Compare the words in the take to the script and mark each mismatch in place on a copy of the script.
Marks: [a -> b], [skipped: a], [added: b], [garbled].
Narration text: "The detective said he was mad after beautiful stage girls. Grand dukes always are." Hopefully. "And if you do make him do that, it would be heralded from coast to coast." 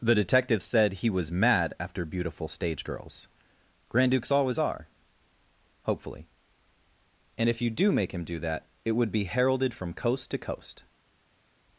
"The detective said he was mad after beautiful stage girls. Grand dukes always are." Hopefully. "And if you do make him do that, it would be heralded from coast to coast."